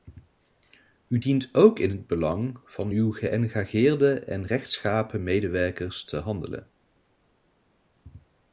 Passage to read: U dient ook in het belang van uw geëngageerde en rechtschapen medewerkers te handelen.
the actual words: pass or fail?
pass